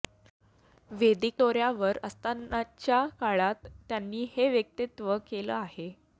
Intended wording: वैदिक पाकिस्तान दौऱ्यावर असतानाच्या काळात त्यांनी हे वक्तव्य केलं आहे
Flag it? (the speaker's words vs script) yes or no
yes